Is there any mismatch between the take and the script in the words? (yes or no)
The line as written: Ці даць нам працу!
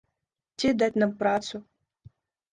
no